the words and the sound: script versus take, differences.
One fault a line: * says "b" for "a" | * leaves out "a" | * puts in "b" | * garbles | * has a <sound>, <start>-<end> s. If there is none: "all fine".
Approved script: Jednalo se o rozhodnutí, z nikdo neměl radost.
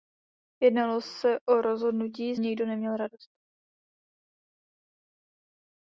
all fine